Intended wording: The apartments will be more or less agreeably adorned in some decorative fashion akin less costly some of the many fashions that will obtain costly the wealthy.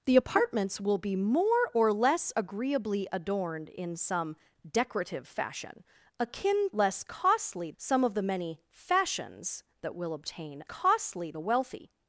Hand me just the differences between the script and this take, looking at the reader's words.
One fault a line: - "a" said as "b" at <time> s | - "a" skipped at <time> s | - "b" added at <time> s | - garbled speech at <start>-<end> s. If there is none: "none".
none